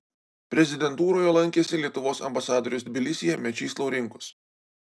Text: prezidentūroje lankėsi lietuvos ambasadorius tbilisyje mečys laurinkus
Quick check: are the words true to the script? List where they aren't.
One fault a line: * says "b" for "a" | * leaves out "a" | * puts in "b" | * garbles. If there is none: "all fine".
all fine